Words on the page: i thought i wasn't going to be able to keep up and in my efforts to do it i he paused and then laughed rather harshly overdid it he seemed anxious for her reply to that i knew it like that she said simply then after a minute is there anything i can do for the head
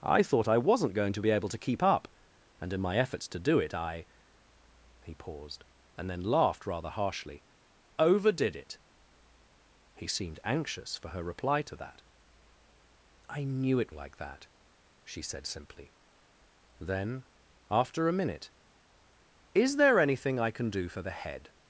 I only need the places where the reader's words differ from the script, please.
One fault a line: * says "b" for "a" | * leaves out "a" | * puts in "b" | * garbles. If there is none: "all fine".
all fine